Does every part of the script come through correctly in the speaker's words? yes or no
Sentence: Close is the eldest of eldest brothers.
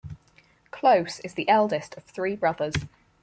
no